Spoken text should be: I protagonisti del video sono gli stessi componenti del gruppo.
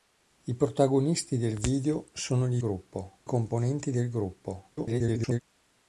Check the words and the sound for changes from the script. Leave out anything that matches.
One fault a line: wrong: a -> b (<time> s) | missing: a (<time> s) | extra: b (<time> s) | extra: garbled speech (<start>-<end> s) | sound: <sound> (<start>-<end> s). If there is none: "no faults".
wrong: stessi -> gruppo (2.6 s)
extra: garbled speech (4.8-5.4 s)